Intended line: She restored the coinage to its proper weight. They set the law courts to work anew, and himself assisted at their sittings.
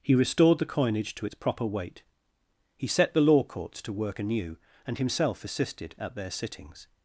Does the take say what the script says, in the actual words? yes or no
no